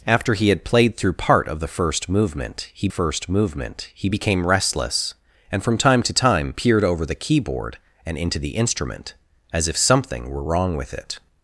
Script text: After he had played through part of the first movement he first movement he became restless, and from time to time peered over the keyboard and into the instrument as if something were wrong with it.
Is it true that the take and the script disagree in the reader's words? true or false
false